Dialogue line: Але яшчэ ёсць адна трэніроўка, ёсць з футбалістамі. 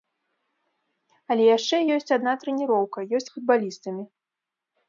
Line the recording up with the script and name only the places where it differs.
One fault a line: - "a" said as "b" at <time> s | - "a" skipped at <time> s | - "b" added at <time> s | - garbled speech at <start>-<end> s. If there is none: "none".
none